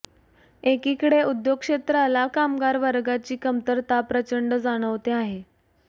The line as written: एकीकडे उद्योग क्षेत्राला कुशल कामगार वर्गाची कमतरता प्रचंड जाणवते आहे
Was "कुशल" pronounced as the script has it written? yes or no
no